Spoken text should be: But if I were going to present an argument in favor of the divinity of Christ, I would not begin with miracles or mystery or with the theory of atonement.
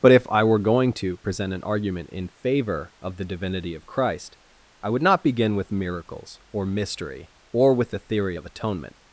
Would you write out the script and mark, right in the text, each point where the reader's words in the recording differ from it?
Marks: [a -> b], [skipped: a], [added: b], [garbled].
But if I were going to present an argument in favor of the divinity of Christ, I would not begin with miracles or mystery or with the theory of atonement.